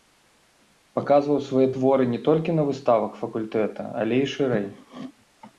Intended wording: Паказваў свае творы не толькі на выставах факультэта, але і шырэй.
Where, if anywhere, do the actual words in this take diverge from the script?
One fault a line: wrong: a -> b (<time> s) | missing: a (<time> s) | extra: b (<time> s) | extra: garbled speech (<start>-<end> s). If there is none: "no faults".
no faults